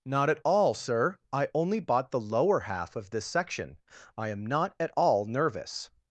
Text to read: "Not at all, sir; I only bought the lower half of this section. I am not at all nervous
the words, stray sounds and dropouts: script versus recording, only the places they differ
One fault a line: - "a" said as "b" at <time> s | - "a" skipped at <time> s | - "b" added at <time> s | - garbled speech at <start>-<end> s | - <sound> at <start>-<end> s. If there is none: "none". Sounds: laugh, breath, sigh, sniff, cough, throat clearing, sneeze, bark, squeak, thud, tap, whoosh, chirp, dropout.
none